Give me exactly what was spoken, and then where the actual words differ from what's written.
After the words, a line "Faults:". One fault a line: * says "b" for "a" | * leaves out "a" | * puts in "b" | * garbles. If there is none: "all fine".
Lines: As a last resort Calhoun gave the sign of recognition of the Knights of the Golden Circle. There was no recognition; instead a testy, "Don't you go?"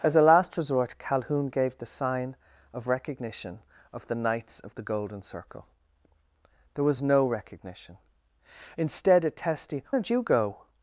As a last resort Calhoun gave the sign of recognition of the Knights of the Golden Circle. There was no recognition; instead a testy, "Don't you go?"
Faults:
all fine